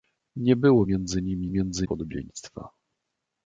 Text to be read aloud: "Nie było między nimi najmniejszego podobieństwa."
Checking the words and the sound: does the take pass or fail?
fail